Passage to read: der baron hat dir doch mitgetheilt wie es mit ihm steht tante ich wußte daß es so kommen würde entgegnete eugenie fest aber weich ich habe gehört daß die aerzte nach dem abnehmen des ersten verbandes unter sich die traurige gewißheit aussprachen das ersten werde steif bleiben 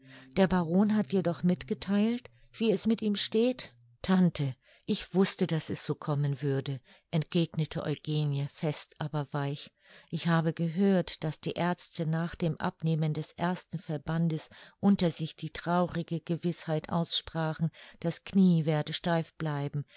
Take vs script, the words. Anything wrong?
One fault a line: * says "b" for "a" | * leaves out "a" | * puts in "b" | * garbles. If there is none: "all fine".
* says "knie" for "ersten"